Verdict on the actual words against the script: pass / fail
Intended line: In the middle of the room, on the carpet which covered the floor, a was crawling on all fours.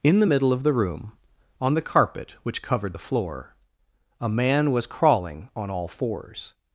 fail